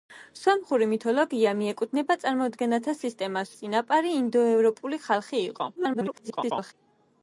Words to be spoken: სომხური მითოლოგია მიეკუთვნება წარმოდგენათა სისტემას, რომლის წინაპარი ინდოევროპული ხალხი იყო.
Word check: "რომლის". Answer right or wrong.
wrong